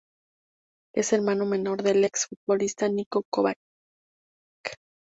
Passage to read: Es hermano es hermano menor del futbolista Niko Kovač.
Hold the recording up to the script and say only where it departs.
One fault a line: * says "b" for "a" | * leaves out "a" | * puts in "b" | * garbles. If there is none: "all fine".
* leaves out "es hermano"
* puts in "ex"